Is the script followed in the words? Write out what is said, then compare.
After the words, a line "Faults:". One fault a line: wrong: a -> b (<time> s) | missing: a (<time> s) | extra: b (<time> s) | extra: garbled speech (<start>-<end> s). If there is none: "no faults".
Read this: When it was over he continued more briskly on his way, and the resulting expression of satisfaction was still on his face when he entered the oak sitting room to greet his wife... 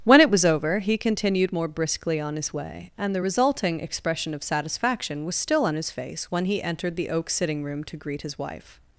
When it was over he continued more briskly on his way, and the resulting expression of satisfaction was still on his face when he entered the oak sitting room to greet his wife...
Faults:
no faults